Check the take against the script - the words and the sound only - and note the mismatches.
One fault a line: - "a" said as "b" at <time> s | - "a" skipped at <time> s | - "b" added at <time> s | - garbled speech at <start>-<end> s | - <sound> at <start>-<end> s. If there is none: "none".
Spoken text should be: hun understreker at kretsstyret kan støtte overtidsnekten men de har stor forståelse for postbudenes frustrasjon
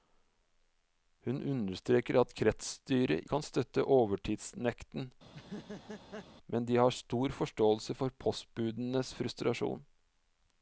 - laugh at 5.3-6.3 s